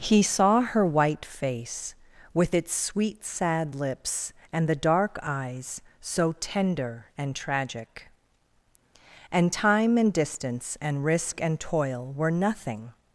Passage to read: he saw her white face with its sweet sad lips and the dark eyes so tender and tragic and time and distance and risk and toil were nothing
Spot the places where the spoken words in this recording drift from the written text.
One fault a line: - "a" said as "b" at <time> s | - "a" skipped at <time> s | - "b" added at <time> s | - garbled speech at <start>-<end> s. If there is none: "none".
none